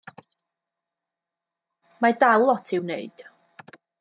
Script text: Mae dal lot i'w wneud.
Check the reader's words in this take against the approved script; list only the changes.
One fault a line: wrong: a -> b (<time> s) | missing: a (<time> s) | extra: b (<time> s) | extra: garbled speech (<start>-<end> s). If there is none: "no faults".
no faults